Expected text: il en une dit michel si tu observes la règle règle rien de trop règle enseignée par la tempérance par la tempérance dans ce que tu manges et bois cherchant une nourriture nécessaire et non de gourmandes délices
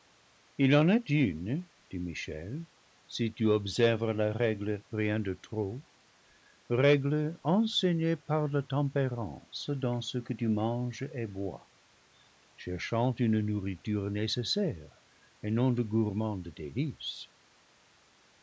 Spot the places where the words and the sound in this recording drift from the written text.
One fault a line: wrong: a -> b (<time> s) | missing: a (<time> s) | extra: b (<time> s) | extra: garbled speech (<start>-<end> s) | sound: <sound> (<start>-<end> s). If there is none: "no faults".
extra: est (0.9 s)
missing: règle (4.8 s)
missing: par la tempérance (9.7 s)